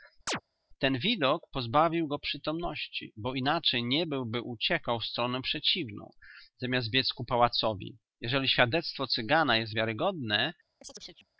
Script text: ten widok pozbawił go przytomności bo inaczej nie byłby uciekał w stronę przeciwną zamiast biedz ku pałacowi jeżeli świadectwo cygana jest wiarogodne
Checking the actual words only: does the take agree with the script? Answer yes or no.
yes